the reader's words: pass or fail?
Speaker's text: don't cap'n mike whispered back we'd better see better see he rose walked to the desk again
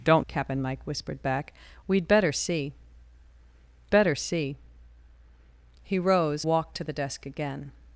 pass